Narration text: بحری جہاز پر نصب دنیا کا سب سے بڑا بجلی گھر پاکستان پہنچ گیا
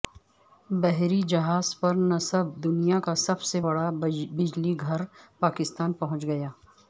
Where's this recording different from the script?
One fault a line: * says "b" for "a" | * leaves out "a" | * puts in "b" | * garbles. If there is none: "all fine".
all fine